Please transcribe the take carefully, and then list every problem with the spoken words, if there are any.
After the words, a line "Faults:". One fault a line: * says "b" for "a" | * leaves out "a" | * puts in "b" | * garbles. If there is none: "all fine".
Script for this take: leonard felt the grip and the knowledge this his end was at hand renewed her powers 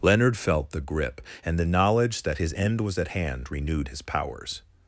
leonard felt the grip and the knowledge that his end was at hand renewed his powers
Faults:
* says "that" for "this"
* says "his" for "her"